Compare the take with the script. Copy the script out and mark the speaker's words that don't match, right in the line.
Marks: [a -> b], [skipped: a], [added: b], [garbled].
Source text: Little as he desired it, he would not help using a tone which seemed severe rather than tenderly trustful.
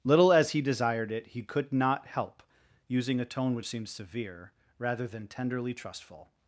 Little as he desired it, he [would -> could] not help using a tone which seemed severe rather than tenderly trustful.